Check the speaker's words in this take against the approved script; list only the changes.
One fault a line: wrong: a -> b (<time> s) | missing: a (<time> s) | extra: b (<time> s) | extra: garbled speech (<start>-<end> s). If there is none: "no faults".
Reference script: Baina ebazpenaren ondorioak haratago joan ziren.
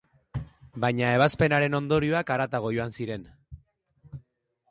no faults